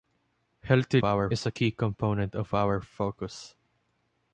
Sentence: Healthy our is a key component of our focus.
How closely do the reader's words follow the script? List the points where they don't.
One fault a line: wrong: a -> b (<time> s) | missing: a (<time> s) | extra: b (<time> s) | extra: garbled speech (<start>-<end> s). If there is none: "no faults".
no faults